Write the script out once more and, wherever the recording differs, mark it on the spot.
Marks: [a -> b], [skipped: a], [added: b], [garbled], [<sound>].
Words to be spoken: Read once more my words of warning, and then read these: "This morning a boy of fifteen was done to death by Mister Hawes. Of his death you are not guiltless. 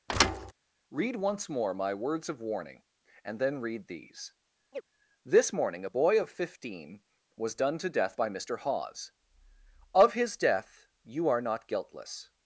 [thud] Read once more my words of warning, and then read these: [chirp] "This morning a boy of fifteen was done to death by Mister Hawes. Of his death you are not guiltless.